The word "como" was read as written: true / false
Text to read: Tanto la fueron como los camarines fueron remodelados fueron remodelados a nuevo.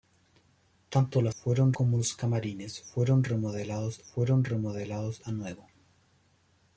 true